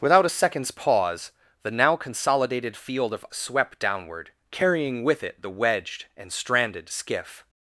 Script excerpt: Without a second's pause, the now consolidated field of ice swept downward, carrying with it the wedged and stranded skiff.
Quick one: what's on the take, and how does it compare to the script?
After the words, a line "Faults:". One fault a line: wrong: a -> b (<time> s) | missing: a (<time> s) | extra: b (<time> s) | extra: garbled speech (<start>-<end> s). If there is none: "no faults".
Without a second's pause, the now consolidated field of swept downward, carrying with it the wedged and stranded skiff.
Faults:
missing: ice (3.3 s)